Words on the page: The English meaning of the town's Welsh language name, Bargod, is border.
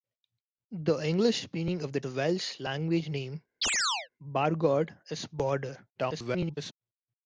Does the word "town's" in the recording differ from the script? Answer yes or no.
yes